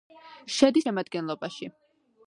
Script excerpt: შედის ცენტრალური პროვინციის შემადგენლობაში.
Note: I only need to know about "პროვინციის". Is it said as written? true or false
false